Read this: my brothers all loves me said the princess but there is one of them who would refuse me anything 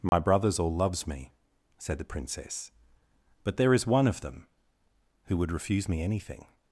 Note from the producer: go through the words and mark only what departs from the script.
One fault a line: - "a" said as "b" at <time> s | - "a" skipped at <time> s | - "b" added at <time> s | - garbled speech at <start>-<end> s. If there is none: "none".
none